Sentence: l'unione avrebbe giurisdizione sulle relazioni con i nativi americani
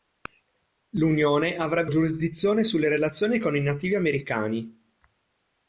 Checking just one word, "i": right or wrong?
right